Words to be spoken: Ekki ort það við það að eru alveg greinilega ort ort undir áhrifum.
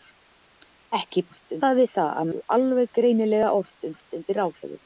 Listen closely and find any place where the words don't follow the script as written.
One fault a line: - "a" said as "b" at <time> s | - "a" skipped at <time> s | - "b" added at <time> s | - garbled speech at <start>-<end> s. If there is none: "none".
none